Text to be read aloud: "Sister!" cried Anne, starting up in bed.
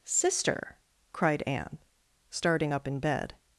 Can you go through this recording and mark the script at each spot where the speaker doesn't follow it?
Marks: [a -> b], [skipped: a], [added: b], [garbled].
"Sister!" cried Anne, starting up in bed.